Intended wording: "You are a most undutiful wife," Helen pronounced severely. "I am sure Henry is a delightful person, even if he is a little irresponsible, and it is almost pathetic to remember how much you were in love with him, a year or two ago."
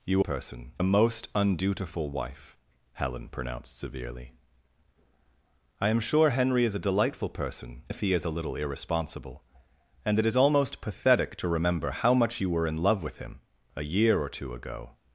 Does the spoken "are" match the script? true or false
false